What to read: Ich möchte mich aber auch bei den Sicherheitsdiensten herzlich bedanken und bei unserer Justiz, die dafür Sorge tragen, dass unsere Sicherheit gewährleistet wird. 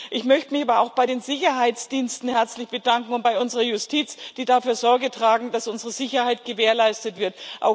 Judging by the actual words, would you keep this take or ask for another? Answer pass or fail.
pass